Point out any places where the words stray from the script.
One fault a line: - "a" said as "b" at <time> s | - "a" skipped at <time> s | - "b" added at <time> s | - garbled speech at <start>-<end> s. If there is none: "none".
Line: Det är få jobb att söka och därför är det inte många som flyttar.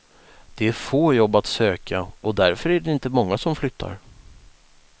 none